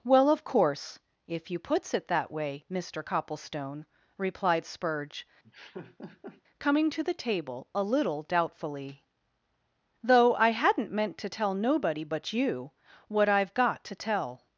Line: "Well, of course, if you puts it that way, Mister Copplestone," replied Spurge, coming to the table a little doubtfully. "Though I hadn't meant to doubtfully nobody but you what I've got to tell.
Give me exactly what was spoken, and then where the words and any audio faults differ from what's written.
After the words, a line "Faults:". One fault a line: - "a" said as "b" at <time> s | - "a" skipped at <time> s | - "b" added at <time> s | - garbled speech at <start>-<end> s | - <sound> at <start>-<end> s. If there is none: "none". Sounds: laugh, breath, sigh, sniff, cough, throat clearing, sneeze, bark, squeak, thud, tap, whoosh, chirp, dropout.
"Well, of course, if you puts it that way, Mister Copplestone," replied Spurge, coming to the table a little doubtfully. "Though I hadn't meant to tell nobody but you what I've got to tell.
Faults:
- laugh at 5.4-6.4 s
- "doubtfully" said as "tell" at 11.3 s